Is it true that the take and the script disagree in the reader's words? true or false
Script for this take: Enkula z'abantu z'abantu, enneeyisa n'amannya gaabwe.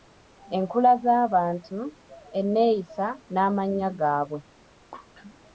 true